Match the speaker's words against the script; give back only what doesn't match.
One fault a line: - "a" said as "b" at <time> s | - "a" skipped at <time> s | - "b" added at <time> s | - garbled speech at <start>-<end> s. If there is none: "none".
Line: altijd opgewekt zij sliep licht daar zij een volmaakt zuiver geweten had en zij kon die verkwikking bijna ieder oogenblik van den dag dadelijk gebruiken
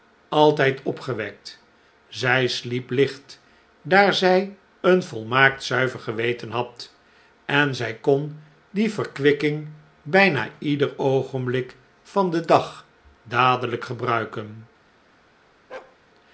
none